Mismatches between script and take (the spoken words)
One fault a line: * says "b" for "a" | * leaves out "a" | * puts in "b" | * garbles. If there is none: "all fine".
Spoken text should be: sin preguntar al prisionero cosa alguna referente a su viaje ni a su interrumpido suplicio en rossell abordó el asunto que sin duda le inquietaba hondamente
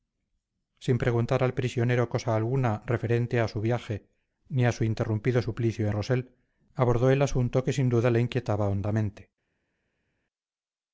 * leaves out "en"